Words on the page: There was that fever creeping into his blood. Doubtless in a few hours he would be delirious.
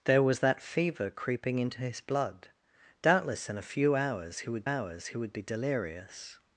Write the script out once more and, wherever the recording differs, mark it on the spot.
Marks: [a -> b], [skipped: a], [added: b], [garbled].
There was that fever creeping into his blood. Doubtless in a few hours he would [added: hours he would] be delirious.